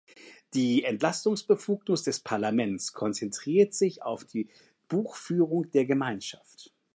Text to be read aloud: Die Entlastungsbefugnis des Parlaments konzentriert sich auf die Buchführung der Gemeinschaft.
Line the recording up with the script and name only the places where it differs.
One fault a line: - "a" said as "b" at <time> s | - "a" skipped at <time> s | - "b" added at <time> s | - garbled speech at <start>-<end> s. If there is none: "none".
none